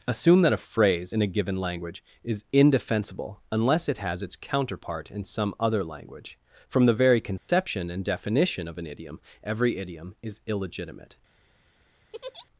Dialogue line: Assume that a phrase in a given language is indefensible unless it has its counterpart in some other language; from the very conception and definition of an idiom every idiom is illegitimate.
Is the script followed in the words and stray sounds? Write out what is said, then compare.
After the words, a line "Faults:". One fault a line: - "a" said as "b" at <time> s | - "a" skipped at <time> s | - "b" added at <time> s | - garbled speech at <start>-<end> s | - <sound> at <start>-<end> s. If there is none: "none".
Assume that a phrase in a given language is indefensible unless it has its counterpart in some other language; from the very conception and definition of an idiom every idiom is illegitimate.
Faults:
- dropout at 7.4-7.5 s
- laugh at 12.1-12.5 s